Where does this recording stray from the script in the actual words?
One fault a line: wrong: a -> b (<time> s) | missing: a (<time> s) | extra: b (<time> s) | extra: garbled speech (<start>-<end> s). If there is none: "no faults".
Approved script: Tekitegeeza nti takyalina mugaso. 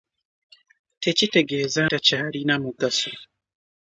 missing: nti (1.8 s)